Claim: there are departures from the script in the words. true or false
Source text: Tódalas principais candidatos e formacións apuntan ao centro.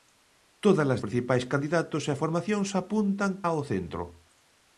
false